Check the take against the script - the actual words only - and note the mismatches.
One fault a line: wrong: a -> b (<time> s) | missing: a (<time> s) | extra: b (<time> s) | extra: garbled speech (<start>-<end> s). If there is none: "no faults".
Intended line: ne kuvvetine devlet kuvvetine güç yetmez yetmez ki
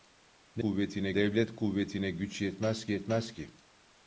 no faults